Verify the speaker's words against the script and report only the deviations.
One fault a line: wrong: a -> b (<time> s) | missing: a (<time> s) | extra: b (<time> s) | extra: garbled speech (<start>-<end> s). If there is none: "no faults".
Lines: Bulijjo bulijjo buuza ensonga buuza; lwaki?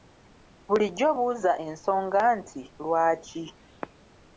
missing: bulijjo (1.1 s)
wrong: buuza -> nti (2.4 s)